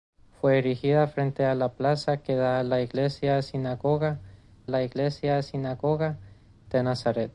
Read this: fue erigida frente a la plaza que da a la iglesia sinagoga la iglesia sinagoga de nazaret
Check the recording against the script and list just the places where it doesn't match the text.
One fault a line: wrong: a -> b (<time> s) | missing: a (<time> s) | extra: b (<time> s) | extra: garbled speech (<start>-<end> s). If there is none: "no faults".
no faults